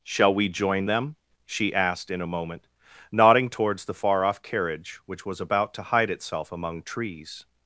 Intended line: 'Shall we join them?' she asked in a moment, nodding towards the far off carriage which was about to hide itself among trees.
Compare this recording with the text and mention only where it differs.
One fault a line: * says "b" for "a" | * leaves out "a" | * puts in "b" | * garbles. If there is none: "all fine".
all fine